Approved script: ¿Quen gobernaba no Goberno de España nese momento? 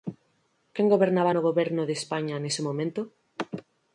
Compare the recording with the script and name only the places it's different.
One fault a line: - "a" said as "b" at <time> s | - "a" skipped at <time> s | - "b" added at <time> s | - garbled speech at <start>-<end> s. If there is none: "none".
none